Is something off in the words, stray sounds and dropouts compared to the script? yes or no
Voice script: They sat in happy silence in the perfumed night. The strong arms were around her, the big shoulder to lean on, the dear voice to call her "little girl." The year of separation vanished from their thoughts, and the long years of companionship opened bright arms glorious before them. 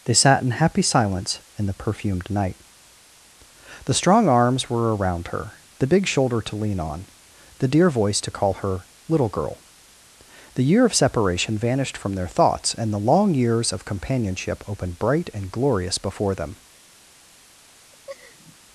yes